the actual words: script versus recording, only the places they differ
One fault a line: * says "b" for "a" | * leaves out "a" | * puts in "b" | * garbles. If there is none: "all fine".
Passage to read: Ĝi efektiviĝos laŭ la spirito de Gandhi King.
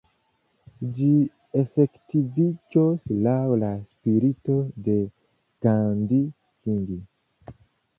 all fine